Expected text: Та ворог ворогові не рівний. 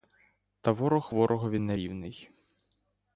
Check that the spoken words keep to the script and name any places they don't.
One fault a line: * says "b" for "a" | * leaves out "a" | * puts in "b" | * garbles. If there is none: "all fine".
all fine